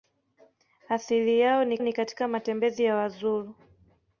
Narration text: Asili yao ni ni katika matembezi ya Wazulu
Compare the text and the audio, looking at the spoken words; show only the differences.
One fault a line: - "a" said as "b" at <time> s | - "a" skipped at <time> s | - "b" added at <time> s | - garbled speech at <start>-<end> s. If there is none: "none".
none